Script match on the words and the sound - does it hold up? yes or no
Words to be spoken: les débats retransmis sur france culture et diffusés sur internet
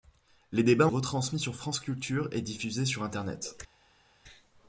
yes